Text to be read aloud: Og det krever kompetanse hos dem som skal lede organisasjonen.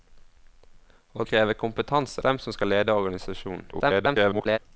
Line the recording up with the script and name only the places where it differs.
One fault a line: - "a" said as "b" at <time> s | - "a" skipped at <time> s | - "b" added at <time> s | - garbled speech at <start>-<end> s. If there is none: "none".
- "det" skipped at 1.2 s
- "hos" skipped at 2.2 s
- garbled speech at 3.7-4.6 s